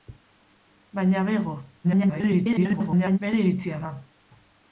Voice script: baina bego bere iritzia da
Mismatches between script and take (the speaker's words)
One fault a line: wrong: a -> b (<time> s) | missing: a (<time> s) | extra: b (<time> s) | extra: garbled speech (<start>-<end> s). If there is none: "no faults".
extra: garbled speech (1.8-3.2 s)